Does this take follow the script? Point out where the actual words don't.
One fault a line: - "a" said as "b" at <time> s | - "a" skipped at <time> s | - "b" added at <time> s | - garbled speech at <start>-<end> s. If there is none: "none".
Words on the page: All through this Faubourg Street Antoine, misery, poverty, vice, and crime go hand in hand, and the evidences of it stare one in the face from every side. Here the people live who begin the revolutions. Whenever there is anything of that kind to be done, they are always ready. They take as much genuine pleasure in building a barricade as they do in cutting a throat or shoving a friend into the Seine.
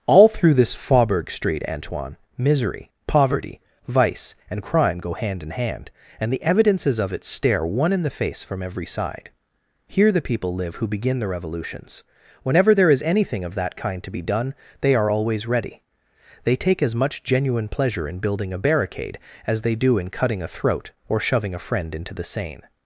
none